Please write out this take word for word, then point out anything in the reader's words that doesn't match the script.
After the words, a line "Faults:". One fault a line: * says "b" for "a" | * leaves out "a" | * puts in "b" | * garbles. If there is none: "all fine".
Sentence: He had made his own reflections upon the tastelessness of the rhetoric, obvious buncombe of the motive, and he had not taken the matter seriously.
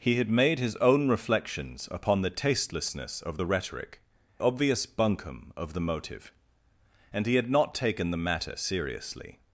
He had made his own reflections upon the tastelessness of the rhetoric, obvious buncombe of the motive, and he had not taken the matter seriously.
Faults:
all fine